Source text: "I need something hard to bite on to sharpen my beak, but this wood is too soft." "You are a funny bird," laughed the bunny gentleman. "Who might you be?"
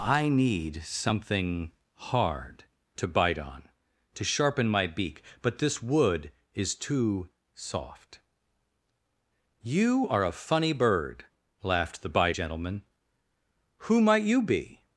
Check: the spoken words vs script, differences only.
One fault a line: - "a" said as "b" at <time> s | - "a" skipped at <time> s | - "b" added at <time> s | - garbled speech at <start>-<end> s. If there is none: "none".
- "bunny" said as "bite" at 12.1 s